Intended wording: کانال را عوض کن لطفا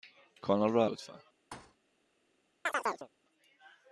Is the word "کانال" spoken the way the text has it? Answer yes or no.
yes